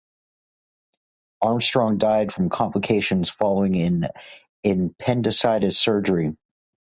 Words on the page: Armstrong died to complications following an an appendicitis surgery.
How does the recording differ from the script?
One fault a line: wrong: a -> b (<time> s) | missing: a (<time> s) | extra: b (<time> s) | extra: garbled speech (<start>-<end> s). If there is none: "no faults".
wrong: to -> from (2.3 s)
missing: an (4.1 s)